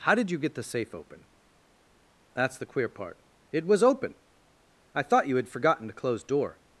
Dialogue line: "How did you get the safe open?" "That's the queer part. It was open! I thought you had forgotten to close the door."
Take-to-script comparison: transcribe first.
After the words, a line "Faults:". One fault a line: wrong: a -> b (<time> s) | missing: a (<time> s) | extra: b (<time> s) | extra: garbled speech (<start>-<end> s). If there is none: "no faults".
"How did you get the safe open?" "That's the queer part. It was open! I thought you had forgotten to close door."
Faults:
missing: the (6.2 s)